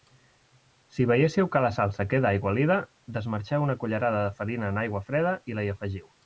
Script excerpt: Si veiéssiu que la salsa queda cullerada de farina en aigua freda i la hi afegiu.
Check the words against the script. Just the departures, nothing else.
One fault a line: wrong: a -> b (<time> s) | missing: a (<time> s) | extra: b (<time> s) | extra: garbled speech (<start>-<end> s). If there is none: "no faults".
extra: aigualida desmarxeu una (2.3 s)